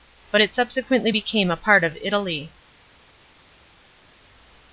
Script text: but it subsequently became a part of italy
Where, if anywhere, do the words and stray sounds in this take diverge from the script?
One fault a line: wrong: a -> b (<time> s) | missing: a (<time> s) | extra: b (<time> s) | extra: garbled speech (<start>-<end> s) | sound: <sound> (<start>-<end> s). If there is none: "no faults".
no faults